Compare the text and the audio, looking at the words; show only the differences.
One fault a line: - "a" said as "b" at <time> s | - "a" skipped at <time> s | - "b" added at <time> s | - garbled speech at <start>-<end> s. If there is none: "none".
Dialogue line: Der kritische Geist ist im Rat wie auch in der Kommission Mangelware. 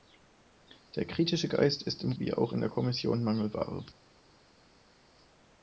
- "Rat" skipped at 2.1 s